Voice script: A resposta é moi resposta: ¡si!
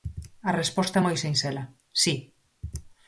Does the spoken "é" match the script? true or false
true